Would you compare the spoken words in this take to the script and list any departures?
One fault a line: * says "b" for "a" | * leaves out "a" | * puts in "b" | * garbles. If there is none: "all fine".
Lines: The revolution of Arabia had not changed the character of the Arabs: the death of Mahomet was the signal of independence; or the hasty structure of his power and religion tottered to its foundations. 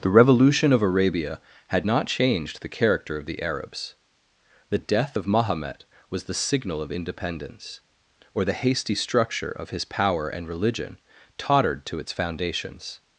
all fine